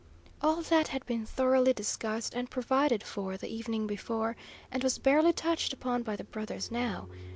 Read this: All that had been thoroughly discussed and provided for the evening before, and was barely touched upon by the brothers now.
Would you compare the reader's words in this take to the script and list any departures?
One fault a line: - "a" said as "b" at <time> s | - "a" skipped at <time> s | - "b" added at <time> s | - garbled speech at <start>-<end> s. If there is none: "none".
none